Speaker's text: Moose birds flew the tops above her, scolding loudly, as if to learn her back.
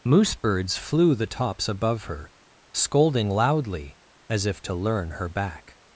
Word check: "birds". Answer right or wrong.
right